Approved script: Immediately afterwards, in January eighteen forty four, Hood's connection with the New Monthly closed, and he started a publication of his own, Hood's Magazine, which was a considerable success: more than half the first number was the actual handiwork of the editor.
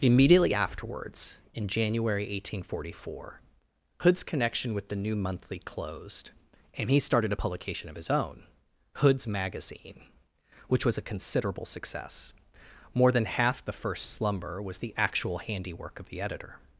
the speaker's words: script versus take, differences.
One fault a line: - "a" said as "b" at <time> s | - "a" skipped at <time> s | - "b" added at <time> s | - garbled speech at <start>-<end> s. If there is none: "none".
- "number" said as "slumber" at 14.1 s